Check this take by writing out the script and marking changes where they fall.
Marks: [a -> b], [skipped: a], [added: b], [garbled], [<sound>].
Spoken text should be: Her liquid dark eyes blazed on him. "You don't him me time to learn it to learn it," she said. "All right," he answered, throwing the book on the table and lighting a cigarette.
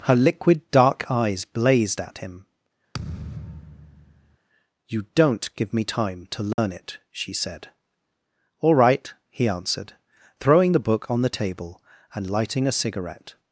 Her liquid dark eyes blazed [on -> at] him. [thud] "You don't [him -> give] me time to learn [dropout] it [skipped: to learn it,"] she said. "All right," he answered, throwing the book on the table and lighting a cigarette.